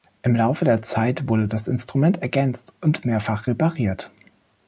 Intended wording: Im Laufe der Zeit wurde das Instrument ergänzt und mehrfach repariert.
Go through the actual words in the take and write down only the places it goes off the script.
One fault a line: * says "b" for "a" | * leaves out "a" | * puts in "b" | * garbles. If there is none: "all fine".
all fine